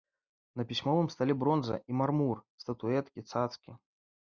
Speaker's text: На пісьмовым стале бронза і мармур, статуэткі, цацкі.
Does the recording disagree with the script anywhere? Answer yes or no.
no